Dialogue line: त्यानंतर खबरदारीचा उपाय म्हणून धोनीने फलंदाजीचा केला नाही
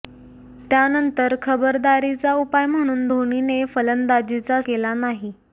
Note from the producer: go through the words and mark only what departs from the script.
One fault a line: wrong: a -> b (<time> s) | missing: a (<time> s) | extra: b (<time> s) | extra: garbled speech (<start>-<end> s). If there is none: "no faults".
no faults